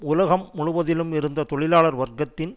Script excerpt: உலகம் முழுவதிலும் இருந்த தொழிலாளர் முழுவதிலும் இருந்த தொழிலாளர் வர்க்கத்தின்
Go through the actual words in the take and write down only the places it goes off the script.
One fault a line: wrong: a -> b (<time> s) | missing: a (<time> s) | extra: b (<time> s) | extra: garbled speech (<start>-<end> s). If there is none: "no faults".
missing: முழுவதிலும் இருந்த தொழிலாளர் (2.0 s)